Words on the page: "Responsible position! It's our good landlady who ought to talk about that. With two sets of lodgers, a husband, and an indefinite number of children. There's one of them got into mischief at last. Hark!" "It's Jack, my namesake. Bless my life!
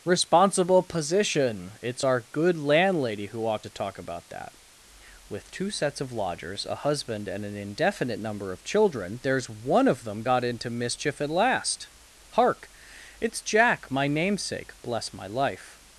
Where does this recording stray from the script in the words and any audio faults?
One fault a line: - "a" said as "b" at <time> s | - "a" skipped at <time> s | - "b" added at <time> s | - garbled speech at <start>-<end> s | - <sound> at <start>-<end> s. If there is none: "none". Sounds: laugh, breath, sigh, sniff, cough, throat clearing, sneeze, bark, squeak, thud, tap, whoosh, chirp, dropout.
none